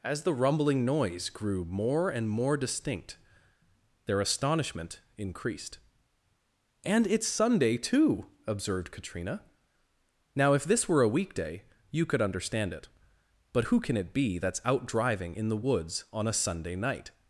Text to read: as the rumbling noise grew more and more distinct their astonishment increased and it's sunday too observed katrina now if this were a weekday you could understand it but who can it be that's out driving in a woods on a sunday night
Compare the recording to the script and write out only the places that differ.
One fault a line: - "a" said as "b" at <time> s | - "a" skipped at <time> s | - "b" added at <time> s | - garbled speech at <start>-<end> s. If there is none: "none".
- "a" said as "the" at 15.5 s